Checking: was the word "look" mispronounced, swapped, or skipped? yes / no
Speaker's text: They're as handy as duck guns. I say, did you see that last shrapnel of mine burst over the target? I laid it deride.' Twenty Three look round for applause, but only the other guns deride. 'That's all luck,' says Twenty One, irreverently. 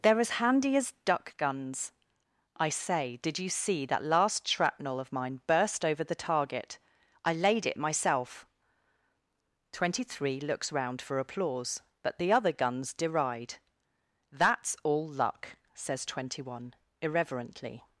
yes